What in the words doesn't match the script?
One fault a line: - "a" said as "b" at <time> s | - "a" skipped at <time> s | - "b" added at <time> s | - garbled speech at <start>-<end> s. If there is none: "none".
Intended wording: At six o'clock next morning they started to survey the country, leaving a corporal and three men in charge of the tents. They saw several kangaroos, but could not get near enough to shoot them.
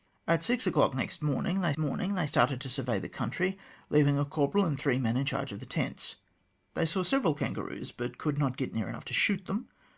- "morning they" added at 1.8 s